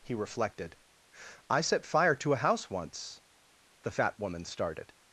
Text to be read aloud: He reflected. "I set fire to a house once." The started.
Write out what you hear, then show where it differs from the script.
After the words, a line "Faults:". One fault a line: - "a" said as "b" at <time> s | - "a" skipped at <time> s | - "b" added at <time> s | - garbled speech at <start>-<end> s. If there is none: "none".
He reflected. "I set fire to a house once." The fat woman started.
Faults:
- "fat woman" added at 3.9 s